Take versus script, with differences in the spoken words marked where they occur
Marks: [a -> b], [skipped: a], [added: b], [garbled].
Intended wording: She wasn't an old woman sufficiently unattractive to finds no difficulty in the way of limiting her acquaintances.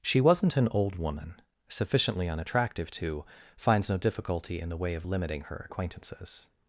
She wasn't an old woman sufficiently unattractive to finds no difficulty in the way of limiting her acquaintances.